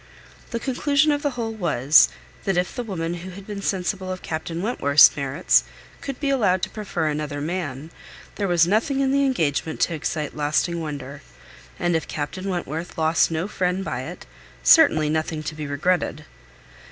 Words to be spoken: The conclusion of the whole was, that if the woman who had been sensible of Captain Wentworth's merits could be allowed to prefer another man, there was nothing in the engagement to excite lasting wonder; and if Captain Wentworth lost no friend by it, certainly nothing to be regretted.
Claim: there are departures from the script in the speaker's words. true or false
false